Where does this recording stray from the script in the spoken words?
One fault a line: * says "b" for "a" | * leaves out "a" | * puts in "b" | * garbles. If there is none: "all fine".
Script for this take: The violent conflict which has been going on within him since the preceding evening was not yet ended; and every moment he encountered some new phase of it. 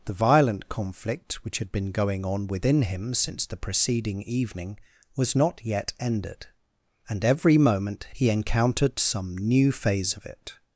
* says "had" for "has"